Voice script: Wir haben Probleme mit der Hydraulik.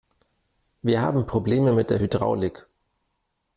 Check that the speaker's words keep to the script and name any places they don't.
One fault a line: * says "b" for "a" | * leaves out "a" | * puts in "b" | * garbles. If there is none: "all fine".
all fine